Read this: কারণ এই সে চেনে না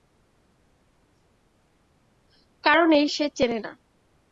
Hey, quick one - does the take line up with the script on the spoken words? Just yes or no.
yes